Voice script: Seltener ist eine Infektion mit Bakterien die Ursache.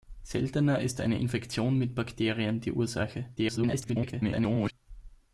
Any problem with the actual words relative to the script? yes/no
yes